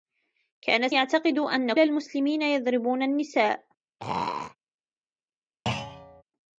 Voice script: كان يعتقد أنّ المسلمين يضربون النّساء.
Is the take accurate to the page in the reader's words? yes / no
yes